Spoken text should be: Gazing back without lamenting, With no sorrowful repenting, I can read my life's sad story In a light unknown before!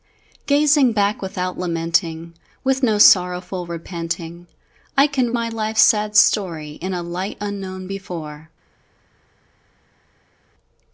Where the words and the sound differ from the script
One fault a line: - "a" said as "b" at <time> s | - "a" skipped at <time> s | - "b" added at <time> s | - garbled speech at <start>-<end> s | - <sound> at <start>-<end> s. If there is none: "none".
- "read" skipped at 5.3 s